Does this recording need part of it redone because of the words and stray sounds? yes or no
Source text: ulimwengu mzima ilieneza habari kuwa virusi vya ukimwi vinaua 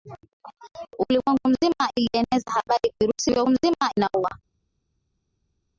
yes